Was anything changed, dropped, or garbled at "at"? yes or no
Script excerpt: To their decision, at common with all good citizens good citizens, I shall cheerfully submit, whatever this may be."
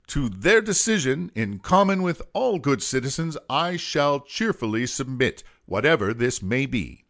yes